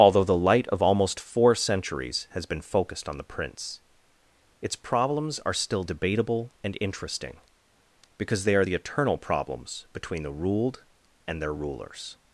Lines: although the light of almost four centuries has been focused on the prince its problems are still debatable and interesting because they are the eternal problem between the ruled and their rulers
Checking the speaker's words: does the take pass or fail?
fail